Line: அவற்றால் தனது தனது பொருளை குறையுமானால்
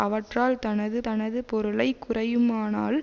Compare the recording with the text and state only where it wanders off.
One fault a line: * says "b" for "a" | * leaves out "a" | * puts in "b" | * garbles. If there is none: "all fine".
all fine